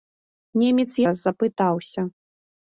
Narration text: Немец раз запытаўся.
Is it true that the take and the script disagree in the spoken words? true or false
false